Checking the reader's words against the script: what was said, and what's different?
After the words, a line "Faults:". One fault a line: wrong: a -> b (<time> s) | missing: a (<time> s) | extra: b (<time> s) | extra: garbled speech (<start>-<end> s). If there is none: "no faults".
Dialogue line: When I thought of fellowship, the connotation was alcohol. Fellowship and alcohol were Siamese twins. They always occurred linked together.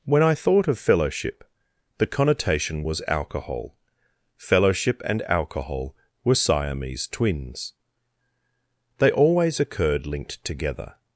When I thought of fellowship, the connotation was alcohol. Fellowship and alcohol were Siamese twins. They always occurred linked together.
Faults:
no faults